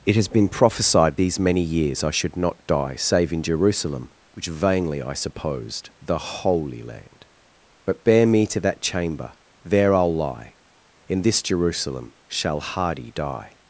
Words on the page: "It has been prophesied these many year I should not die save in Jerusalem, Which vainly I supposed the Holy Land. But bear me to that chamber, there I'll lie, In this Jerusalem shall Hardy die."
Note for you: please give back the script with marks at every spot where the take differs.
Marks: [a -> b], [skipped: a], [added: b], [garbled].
"It has been prophesied these many [year -> years] I should not die save in Jerusalem, Which vainly I supposed the Holy Land. But bear me to that chamber, there I'll lie, In this Jerusalem shall Hardy die."